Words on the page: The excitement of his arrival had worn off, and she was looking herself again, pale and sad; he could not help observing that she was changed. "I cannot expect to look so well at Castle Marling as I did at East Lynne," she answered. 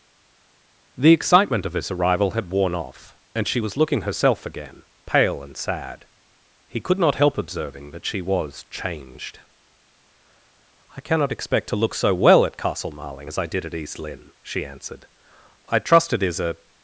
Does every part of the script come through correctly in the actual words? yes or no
no